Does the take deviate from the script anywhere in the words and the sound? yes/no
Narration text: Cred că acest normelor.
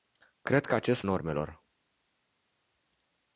no